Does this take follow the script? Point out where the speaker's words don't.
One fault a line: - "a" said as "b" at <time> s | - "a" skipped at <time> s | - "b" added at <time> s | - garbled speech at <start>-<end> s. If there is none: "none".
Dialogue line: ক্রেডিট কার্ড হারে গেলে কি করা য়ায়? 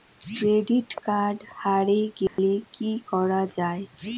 none